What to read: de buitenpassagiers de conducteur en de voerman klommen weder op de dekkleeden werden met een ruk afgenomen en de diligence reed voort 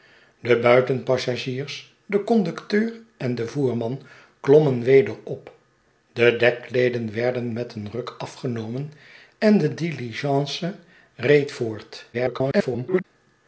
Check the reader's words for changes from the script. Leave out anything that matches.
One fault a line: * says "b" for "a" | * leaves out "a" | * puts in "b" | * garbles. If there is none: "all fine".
* garbles